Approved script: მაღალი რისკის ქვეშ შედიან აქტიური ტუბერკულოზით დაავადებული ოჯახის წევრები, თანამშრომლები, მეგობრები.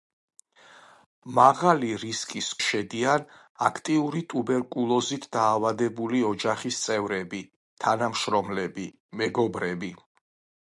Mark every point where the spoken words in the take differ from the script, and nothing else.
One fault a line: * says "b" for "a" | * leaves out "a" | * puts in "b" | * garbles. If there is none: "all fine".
* leaves out "ქვეშ"